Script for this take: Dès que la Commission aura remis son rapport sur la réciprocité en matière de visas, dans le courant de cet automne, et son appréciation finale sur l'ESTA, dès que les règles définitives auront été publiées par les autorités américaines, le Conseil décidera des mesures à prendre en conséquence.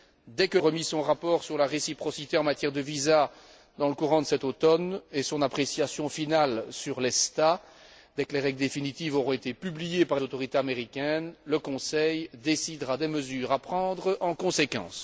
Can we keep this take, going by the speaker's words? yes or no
no